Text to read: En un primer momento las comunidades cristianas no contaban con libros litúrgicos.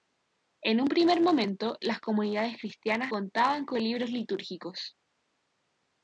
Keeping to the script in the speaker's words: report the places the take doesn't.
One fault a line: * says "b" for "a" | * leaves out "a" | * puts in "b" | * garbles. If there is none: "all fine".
* leaves out "no"